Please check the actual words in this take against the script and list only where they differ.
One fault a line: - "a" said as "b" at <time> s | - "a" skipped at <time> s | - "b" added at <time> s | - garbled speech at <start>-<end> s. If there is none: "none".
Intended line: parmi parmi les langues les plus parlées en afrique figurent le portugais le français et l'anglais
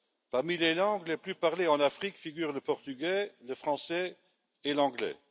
- "parmi" skipped at 0.6 s